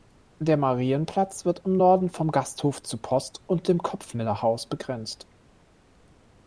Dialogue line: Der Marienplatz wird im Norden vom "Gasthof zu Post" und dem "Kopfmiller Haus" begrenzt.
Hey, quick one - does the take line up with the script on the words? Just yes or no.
yes